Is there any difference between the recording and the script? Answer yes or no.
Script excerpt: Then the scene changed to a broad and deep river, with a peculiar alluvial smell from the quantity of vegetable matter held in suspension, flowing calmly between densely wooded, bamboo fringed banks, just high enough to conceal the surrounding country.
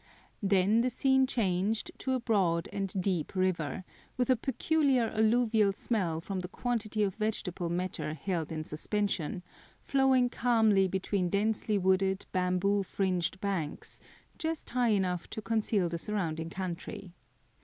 no